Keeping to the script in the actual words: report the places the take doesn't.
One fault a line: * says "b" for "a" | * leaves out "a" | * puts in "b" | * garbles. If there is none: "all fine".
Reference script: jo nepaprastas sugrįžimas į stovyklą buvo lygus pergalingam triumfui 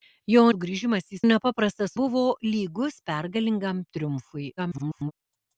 * leaves out "nepaprastas"
* says "nepaprastas" for "stovyklą"
* garbles